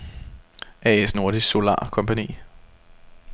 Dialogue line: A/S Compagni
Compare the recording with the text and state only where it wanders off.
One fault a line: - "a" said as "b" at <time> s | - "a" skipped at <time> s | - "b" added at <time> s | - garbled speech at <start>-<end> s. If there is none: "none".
- "Nordisk Solar" added at 1.1 s